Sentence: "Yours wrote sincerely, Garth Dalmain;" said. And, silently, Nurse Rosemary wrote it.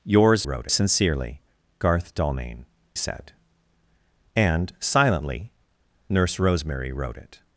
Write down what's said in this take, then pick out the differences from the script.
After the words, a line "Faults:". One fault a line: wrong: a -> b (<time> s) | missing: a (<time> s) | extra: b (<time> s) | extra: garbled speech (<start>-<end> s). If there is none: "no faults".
"Yours wrote sincerely, Garth Dalmain;" said. And, silently, Nurse Rosemary wrote it.
Faults:
no faults